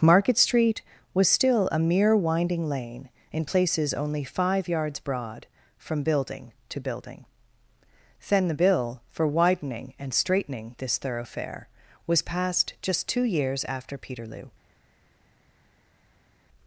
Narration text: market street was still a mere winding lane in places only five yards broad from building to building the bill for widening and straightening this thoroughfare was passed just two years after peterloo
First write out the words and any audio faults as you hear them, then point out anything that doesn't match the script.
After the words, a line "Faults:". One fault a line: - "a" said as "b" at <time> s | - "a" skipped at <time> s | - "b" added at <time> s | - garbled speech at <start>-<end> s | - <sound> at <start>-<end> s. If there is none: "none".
market street was still a mere winding lane in places only five yards broad from building to building then the bill for widening and straightening this thoroughfare was passed just two years after peterloo
Faults:
- "then" added at 8.3 s